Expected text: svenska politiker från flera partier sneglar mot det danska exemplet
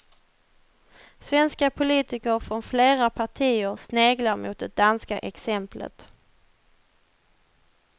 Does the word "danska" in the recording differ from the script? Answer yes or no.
no